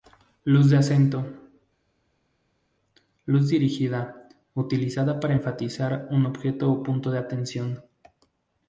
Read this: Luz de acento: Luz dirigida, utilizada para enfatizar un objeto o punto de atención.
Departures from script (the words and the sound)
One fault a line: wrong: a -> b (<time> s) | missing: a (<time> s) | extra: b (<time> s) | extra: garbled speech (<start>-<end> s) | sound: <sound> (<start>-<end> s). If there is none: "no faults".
no faults